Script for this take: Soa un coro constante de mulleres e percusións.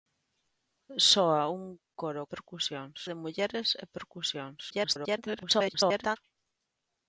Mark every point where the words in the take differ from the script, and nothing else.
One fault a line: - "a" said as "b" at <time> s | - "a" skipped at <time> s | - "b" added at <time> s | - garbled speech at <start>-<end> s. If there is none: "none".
- "constante" said as "percusións" at 2.3 s
- garbled speech at 4.7-6.2 s